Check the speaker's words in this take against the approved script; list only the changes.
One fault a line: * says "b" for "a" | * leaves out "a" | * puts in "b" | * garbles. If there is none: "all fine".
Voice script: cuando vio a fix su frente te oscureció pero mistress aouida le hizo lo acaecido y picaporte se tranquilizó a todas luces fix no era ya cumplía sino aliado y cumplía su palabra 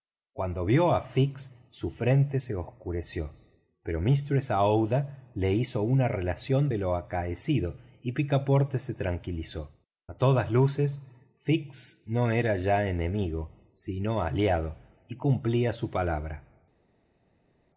* says "se" for "te"
* puts in "una relación de"
* says "enemigo" for "cumplía"